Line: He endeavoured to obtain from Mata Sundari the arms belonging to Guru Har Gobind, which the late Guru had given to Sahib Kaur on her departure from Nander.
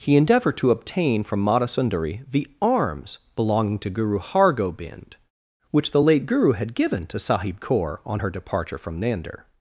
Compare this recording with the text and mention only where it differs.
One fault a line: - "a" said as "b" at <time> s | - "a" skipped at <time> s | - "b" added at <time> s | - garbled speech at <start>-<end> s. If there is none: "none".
none